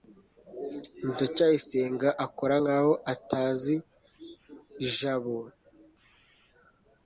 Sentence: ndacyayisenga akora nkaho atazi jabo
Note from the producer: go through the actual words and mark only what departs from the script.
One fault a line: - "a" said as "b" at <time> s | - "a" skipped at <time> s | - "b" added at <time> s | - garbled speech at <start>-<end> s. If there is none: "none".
none